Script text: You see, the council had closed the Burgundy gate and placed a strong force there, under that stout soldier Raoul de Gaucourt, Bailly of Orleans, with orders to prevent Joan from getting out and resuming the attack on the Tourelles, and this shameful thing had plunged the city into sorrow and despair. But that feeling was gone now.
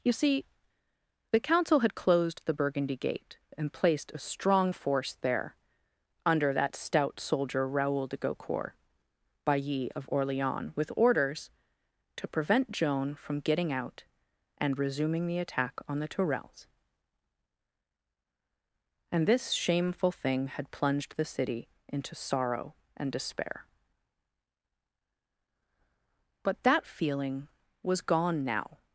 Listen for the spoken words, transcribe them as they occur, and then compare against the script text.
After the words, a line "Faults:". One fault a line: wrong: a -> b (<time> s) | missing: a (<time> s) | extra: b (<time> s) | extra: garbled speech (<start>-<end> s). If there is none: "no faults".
You see, the council had closed the Burgundy gate and placed a strong force there, under that stout soldier Raoul de Gaucourt, Bailly of Orleans, with orders to prevent Joan from getting out and resuming the attack on the Tourelles, and this shameful thing had plunged the city into sorrow and despair. But that feeling was gone now.
Faults:
no faults